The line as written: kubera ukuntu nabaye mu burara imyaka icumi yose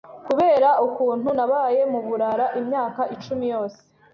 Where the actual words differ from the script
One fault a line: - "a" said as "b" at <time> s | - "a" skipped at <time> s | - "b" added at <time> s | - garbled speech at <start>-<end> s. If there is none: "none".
none